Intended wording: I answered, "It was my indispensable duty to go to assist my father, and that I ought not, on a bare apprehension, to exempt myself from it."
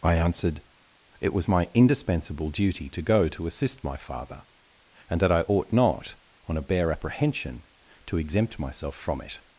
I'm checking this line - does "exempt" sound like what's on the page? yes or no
yes